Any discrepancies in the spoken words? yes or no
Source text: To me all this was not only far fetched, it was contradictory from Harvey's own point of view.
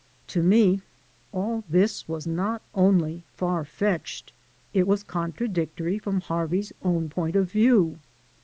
no